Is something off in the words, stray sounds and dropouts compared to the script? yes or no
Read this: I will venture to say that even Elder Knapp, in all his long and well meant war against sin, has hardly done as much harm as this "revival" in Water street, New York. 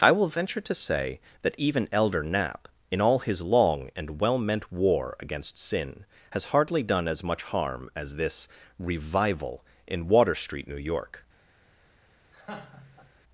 yes